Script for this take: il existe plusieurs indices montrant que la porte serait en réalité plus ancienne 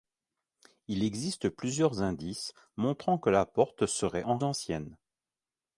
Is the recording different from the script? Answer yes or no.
yes